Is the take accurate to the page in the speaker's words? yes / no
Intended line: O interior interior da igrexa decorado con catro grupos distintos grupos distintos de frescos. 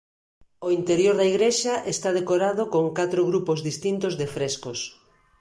no